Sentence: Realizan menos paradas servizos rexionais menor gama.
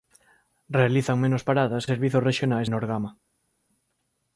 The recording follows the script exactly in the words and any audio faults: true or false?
true